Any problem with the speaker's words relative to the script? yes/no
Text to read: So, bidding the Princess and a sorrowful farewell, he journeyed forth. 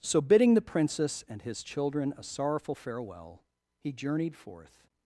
yes